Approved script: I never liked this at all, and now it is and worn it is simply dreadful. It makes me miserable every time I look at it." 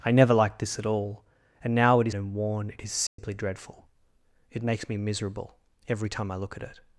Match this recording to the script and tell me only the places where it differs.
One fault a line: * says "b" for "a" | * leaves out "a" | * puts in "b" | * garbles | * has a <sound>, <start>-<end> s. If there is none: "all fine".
* has a dropout, 3.1-3.2 s